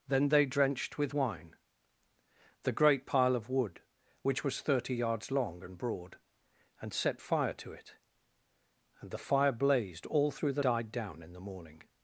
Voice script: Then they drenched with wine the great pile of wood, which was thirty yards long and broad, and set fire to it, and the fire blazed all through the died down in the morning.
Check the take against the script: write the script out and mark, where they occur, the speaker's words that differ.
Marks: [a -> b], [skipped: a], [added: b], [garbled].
Then they drenched with wine the great pile of wood, which was thirty yards long and broad, and set fire to it, and the fire blazed all through the died down in the morning.